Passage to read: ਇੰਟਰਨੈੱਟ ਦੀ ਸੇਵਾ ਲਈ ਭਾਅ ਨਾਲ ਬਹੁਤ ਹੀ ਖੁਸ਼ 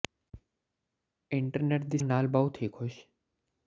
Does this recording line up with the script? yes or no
no